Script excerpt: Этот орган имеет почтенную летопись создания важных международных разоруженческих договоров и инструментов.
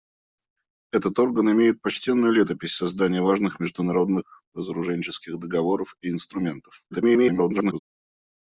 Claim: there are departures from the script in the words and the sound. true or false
true